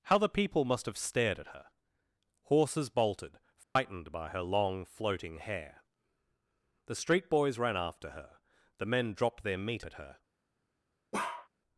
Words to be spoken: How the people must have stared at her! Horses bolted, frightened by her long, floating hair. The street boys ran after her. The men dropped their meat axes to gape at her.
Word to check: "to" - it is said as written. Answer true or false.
false